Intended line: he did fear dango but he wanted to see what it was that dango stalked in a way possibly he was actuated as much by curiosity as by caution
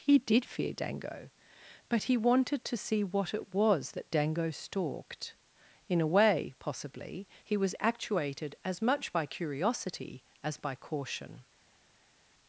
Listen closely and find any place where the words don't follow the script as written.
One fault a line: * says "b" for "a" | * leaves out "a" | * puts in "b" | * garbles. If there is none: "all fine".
all fine